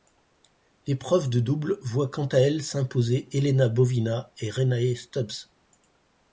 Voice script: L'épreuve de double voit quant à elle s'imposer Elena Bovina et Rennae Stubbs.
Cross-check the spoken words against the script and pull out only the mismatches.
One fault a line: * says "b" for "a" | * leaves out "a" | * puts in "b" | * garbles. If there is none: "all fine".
all fine